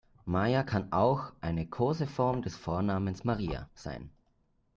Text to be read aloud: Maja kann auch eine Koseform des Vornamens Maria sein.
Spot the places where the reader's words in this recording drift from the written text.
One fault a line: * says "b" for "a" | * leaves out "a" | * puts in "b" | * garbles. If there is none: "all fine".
all fine